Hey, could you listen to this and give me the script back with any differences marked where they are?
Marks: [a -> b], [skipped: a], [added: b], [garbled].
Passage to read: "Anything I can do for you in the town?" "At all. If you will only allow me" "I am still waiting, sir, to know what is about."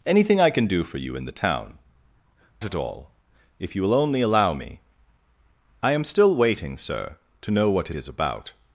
"Anything I can do for you in the town?" "At all. If you will only allow me" "I am still waiting, sir, to know what is about."